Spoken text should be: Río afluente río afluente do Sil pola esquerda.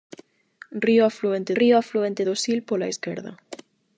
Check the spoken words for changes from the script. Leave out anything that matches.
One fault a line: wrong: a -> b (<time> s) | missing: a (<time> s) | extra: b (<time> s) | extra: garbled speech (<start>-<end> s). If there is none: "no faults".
no faults